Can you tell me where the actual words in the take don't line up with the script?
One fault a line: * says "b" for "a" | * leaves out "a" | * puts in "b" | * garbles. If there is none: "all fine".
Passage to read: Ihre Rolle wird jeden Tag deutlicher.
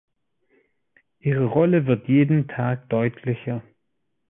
all fine